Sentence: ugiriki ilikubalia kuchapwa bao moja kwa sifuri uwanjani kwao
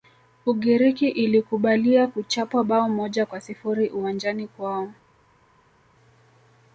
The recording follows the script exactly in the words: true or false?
true